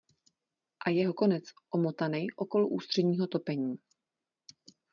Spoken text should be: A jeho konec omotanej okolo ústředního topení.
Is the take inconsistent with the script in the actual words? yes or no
no